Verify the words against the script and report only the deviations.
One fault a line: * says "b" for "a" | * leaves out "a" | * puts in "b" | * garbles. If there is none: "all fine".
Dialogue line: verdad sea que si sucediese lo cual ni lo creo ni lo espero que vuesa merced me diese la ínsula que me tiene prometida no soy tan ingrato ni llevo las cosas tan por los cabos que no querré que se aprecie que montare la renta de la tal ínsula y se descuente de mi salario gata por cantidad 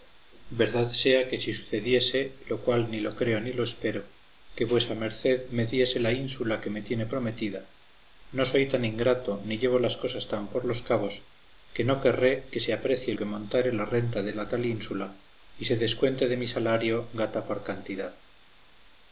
all fine